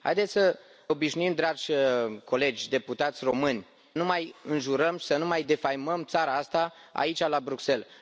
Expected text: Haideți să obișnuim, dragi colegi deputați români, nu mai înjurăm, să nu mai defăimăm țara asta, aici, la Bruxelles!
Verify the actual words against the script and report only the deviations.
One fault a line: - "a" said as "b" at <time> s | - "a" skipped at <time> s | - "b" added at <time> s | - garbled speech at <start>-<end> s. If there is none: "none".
none